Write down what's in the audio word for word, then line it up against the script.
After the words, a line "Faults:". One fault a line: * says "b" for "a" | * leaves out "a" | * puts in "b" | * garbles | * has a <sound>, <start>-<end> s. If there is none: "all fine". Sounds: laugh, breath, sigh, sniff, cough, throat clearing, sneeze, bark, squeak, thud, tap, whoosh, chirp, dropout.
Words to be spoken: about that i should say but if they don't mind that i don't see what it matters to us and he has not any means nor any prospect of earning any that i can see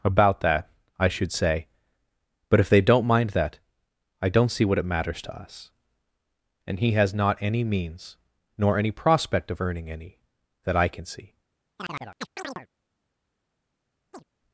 about that i should say but if they don't mind that i don't see what it matters to us and he has not any means nor any prospect of earning any that i can see
Faults:
* has a chirp, 11.8-12.7 s
* has a chirp, 14.1-14.2 s